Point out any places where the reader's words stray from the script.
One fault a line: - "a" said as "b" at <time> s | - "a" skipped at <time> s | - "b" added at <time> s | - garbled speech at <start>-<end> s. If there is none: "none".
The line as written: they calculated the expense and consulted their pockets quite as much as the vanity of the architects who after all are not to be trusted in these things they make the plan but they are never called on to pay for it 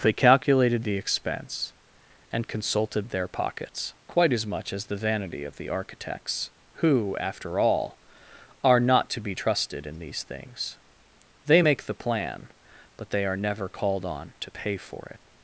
none